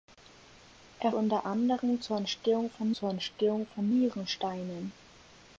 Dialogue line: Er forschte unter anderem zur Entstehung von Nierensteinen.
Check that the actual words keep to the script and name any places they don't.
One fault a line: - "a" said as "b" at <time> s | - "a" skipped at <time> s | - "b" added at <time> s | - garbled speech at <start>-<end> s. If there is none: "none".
- "forschte" skipped at 1.1 s
- "zur Entstehung von" added at 2.9 s